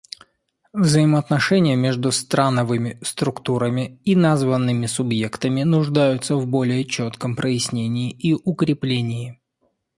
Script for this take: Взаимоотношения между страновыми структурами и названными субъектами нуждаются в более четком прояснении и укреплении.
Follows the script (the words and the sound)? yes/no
yes